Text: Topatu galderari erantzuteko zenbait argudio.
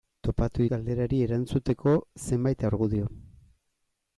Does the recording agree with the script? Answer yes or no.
yes